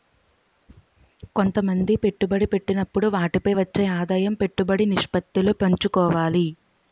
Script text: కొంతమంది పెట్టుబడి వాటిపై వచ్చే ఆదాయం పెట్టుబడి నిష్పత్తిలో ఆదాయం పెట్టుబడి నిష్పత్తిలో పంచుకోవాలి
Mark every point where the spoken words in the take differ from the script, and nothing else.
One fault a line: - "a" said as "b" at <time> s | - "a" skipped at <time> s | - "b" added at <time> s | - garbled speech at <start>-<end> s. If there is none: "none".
- "పెట్టినప్పుడు" added at 2.5 s
- "ఆదాయం పెట్టుబడి నిష్పత్తిలో" skipped at 5.5 s